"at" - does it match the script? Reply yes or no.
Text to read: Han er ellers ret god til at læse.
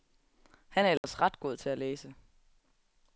yes